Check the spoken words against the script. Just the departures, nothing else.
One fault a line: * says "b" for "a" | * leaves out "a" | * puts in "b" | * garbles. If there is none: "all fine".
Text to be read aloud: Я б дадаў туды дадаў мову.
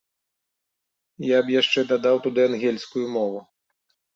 * puts in "яшчэ"
* says "ангельскую" for "дадаў"